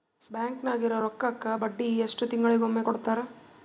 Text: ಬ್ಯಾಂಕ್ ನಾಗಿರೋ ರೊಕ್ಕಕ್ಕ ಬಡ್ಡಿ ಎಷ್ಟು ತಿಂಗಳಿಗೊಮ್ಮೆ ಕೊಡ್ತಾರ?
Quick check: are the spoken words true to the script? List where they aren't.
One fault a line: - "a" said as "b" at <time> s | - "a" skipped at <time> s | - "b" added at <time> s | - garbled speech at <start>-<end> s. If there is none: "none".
none